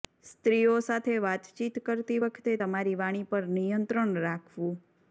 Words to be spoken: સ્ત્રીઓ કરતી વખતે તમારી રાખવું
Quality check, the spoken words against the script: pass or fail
fail